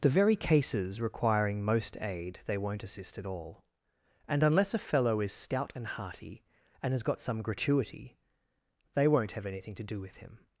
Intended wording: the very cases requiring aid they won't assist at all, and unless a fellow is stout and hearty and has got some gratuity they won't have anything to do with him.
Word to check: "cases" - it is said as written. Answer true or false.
true